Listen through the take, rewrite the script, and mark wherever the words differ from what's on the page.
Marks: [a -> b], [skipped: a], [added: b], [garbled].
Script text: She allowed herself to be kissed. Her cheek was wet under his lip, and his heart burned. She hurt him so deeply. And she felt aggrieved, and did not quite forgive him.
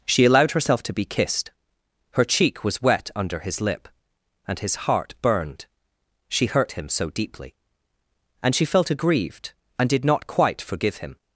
She allowed herself to be kissed. Her cheek was wet under his lip, and his heart burned. She hurt him so deeply. And she felt aggrieved, and did not quite forgive him.